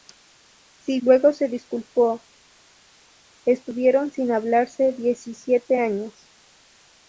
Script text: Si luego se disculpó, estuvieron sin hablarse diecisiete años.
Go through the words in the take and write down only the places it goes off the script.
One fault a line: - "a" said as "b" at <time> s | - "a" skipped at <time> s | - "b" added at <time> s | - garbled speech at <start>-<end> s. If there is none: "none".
none